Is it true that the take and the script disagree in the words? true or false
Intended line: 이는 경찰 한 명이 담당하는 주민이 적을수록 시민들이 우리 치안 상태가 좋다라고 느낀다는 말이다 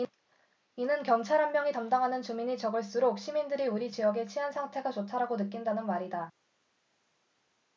true